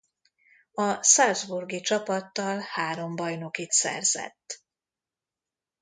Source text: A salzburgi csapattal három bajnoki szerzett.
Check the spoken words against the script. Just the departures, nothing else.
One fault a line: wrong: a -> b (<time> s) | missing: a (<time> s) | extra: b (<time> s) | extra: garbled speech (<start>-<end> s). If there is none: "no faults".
no faults